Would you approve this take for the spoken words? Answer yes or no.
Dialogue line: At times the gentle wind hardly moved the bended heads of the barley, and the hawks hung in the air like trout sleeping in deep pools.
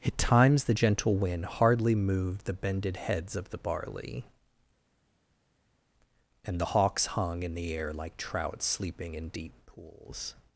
yes